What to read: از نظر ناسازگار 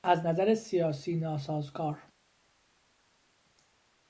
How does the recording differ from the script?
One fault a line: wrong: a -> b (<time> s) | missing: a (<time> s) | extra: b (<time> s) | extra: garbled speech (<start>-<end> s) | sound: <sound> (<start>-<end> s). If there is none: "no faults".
extra: سیاسی (0.5 s)